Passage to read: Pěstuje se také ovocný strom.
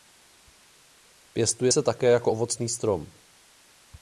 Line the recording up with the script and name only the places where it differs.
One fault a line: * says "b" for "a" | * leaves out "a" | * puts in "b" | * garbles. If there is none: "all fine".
* puts in "jako"